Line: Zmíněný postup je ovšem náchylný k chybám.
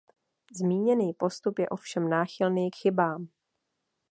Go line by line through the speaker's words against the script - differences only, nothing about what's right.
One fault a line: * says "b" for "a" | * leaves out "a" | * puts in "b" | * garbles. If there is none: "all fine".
all fine